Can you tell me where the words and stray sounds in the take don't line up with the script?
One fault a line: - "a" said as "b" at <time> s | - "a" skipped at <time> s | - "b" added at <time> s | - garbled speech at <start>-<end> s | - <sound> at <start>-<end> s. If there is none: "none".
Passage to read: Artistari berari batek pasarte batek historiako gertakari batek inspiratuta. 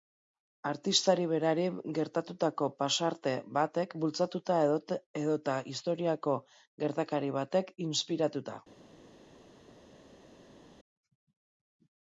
- "batek" said as "gertatutako" at 2.0 s
- "bultzatuta edota" added at 4.0 s